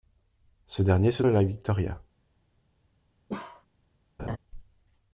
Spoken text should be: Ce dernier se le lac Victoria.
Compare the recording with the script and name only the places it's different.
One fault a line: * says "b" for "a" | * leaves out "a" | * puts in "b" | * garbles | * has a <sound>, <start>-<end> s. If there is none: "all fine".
* has a bark, 3.3-3.7 s
* has a laugh, 4.2-4.4 s